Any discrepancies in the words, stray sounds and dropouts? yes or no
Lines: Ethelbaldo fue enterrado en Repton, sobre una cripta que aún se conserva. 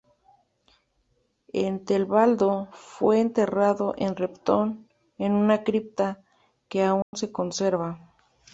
yes